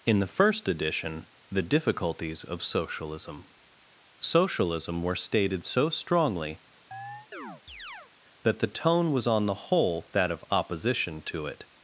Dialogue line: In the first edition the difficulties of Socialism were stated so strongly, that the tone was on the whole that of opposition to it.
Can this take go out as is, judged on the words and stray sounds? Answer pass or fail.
fail